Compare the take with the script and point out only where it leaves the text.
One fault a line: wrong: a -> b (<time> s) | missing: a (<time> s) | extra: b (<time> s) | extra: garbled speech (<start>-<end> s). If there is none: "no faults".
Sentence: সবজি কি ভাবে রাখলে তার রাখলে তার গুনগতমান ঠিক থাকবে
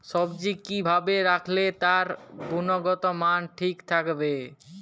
missing: রাখলে তার (2.1 s)